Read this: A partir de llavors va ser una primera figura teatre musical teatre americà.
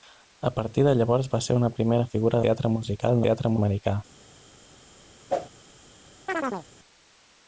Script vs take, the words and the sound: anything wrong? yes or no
yes